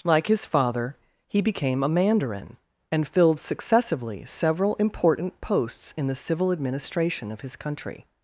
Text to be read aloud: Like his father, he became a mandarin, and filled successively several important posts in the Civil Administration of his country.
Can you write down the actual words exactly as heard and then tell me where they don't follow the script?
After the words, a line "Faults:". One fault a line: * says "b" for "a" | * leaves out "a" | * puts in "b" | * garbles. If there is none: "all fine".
Like his father, he became a mandarin, and filled successively several important posts in the Civil Administration of his country.
Faults:
all fine